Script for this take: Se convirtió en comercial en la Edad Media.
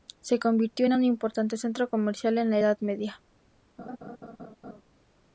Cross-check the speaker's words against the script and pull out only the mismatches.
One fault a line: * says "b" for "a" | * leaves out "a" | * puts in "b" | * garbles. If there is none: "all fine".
* puts in "un importante centro"